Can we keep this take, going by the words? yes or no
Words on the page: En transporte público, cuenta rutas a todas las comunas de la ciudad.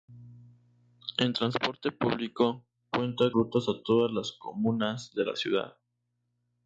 yes